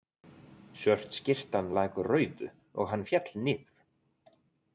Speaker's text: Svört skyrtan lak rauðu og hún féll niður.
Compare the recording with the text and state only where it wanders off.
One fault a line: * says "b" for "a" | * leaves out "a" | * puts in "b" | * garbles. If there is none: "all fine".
* says "hann" for "hún"